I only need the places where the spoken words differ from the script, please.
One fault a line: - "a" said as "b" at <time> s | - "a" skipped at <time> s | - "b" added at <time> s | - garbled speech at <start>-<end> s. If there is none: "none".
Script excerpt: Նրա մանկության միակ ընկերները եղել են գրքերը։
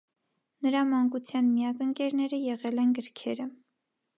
none